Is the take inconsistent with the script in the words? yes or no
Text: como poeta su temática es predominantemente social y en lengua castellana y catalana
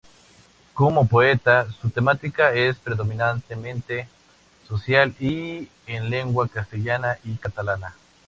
no